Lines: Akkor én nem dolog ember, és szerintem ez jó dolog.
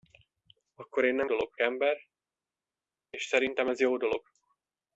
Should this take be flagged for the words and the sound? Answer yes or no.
no